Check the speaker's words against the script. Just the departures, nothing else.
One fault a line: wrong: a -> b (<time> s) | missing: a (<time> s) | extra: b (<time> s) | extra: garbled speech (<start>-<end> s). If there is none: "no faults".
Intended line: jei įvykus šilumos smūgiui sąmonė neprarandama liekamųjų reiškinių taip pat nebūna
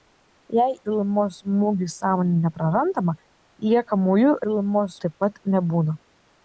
missing: įvykus (0.7 s)
wrong: reiškinių -> šilumos (4.4 s)